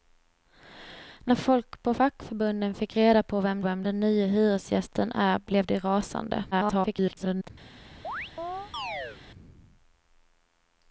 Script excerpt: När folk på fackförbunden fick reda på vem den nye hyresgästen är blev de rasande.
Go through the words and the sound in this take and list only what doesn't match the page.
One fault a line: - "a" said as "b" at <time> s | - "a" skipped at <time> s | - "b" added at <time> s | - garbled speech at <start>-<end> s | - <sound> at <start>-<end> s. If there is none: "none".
- "vem" added at 3.6 s
- garbled speech at 6.5-7.5 s
- chirp at 8.0-9.2 s